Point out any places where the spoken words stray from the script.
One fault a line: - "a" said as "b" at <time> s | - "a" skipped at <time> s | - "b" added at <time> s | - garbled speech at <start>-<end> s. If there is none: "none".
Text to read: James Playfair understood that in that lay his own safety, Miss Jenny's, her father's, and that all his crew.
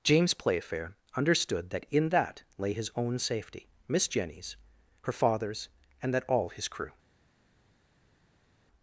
none